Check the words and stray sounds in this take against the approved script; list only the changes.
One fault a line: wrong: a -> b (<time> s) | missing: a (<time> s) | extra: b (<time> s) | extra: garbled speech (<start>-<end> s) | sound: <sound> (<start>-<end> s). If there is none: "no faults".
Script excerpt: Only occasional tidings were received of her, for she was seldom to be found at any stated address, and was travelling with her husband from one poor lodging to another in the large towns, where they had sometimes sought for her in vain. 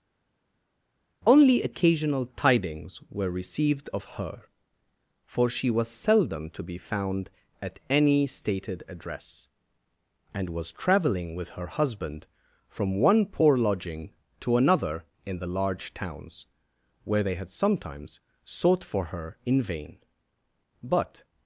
extra: But (20.8 s)